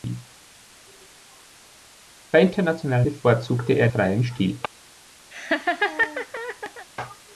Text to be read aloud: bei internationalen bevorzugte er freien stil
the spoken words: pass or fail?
pass